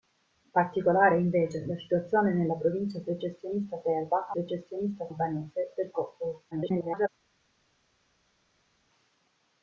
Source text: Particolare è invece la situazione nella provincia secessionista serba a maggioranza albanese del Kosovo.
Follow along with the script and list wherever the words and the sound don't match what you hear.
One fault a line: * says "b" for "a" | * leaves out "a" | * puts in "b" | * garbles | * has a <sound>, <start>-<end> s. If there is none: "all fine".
* says "secessionista" for "maggioranza"
* garbles